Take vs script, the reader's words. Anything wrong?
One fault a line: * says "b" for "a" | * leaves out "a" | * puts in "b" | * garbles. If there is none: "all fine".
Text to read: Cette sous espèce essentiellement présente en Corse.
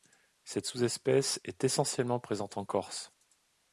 * puts in "est"